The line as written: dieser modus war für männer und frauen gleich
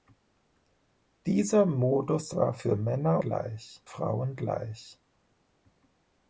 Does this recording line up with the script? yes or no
no